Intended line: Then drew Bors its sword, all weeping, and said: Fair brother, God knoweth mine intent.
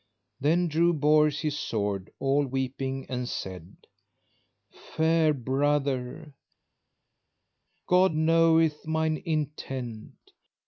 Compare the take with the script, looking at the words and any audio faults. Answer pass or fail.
fail